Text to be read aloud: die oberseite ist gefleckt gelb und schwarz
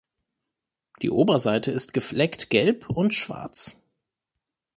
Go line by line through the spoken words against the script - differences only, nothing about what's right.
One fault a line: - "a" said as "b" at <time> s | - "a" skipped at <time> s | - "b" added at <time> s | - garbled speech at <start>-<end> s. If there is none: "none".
none